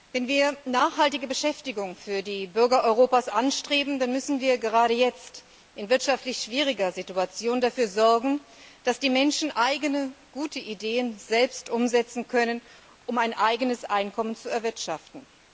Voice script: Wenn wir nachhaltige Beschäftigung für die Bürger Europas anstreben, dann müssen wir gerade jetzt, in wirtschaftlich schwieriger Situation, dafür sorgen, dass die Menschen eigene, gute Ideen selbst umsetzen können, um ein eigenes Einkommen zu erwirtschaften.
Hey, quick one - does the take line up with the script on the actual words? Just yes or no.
yes